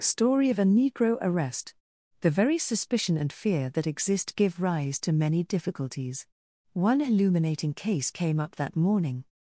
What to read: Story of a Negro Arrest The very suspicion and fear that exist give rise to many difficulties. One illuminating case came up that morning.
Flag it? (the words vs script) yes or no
no